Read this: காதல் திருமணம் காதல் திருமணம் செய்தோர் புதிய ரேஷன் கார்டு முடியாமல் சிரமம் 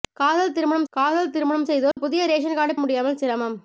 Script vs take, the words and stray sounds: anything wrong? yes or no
yes